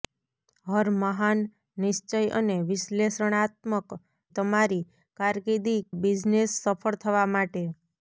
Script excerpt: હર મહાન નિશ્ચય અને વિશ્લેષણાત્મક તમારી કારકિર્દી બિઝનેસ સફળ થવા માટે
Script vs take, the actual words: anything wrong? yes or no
no